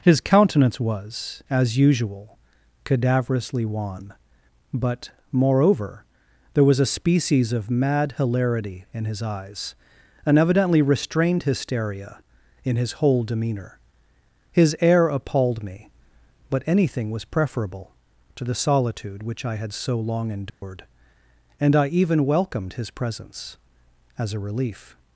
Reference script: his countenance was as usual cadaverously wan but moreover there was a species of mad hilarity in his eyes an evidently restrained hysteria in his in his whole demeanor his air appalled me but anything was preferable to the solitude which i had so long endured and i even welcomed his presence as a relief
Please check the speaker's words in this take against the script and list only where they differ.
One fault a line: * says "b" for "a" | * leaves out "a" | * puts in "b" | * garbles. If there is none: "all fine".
* leaves out "in his"